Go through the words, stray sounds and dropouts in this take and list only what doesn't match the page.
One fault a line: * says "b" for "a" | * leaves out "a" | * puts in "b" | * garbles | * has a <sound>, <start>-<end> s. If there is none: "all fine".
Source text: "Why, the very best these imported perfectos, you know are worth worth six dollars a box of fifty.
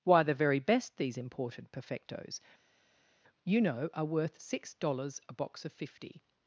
* leaves out "worth"